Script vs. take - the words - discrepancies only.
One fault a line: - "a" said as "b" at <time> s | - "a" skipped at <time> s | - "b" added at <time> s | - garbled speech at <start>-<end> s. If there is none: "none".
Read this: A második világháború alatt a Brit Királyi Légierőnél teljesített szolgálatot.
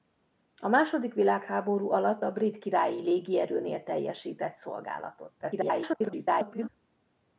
- garbled speech at 5.4-6.7 s